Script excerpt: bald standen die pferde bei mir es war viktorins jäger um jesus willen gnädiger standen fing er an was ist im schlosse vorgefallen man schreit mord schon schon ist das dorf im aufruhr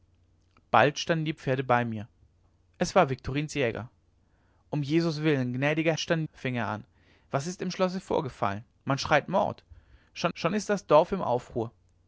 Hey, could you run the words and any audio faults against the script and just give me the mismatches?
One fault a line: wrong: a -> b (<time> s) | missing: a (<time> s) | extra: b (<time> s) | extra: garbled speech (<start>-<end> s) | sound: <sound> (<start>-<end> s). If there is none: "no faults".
no faults